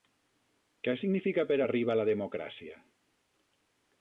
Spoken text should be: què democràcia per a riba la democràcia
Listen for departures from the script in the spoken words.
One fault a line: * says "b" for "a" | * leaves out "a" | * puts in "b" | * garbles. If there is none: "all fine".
* says "significa" for "democràcia"